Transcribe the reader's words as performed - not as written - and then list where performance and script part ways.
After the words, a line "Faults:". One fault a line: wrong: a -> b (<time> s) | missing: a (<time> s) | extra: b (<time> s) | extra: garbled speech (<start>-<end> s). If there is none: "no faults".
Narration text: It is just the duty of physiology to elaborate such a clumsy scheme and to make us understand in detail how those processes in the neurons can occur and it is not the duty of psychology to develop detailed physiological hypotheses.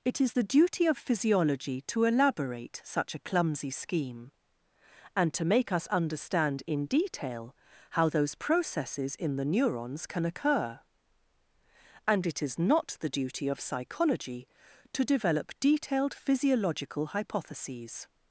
It is the duty of physiology to elaborate such a clumsy scheme and to make us understand in detail how those processes in the neurons can occur and it is not the duty of psychology to develop detailed physiological hypotheses.
Faults:
missing: just (0.3 s)